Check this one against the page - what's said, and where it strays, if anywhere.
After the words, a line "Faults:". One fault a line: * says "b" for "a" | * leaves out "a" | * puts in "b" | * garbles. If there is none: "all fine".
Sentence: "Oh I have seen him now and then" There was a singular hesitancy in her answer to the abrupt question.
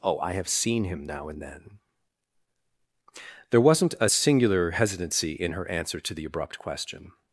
"Oh I have seen him now and then" There wasn't a singular hesitancy in her answer to the abrupt question.
Faults:
* says "wasn't" for "was"